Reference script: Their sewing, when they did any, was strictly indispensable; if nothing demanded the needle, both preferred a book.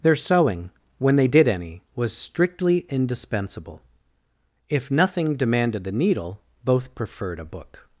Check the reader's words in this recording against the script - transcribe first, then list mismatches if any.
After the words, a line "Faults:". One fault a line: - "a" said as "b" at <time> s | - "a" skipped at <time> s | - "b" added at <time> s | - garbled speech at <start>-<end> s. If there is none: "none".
Their sewing, when they did any, was strictly indispensable; if nothing demanded the needle, both preferred a book.
Faults:
none